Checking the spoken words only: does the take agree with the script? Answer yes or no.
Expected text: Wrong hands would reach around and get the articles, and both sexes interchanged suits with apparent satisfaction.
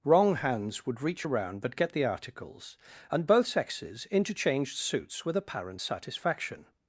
no